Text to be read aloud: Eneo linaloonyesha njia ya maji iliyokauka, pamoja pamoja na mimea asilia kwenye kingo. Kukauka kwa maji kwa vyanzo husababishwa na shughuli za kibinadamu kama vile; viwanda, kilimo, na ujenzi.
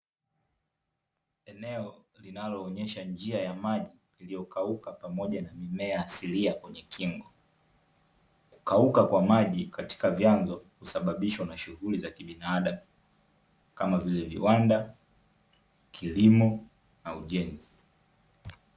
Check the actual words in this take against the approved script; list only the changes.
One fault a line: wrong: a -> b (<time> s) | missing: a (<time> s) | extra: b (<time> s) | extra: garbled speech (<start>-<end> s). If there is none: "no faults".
missing: pamoja (5.4 s)
wrong: kwa -> katika (9.6 s)